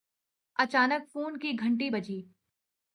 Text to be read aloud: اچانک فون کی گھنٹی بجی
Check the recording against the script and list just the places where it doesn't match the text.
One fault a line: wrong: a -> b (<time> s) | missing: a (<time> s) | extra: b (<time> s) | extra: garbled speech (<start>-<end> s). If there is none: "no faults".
no faults